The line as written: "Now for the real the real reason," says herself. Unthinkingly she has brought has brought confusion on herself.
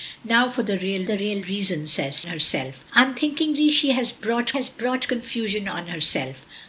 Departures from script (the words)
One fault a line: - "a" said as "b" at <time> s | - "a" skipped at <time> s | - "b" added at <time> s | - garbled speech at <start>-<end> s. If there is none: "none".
none